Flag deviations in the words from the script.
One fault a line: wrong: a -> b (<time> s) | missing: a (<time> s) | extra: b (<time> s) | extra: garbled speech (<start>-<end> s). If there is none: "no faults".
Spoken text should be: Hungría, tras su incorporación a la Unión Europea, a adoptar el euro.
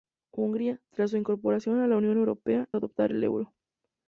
no faults